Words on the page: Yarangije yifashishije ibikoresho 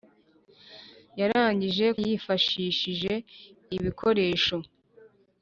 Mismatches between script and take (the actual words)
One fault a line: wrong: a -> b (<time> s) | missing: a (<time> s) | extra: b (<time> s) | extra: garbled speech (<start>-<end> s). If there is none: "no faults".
no faults